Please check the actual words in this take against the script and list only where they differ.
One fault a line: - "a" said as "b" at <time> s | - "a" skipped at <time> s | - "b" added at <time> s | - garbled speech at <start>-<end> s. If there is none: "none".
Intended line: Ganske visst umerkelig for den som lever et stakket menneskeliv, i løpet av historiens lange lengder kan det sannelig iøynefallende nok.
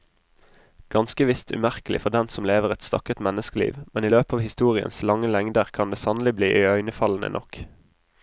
- "men" added at 3.9 s
- "bli" added at 6.4 s